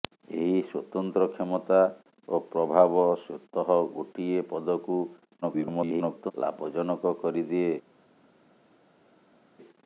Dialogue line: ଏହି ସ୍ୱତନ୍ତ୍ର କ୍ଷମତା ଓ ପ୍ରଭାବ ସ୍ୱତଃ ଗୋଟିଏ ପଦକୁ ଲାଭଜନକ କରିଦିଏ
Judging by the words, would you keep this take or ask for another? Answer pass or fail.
fail